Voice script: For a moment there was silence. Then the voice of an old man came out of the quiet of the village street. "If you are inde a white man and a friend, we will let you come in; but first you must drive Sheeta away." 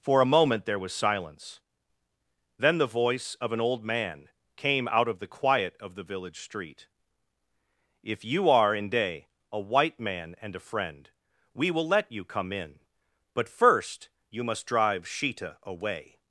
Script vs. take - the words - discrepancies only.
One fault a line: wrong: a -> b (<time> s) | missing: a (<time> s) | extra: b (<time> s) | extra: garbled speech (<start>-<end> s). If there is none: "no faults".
no faults